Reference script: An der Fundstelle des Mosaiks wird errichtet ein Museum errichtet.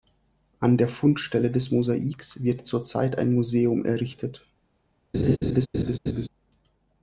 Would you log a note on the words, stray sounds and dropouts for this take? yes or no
yes